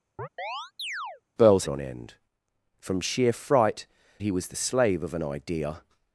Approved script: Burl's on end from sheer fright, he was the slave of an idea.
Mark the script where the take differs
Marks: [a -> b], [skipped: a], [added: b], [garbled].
Burl's on end from sheer fright, he was the slave of an idea.